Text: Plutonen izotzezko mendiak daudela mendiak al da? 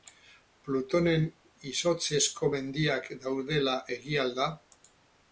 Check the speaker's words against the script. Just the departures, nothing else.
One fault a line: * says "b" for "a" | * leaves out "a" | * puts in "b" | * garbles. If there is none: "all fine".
* says "egia" for "mendiak"